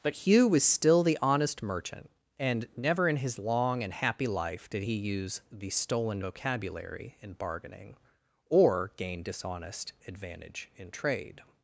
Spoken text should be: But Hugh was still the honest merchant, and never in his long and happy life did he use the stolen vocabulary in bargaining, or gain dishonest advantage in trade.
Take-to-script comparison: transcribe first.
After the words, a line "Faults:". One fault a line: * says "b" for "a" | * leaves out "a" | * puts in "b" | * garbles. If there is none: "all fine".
But Hugh was still the honest merchant, and never in his long and happy life did he use the stolen vocabulary in bargaining, or gain dishonest advantage in trade.
Faults:
all fine